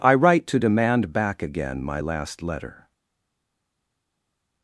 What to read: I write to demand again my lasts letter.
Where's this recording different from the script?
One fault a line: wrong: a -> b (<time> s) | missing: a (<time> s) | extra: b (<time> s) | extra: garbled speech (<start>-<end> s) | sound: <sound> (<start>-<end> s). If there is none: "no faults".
extra: back (1.1 s)
wrong: lasts -> last (2.0 s)